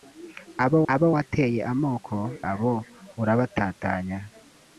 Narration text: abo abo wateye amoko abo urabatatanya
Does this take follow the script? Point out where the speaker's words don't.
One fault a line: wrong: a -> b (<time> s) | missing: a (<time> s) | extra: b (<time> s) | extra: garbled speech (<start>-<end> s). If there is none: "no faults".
no faults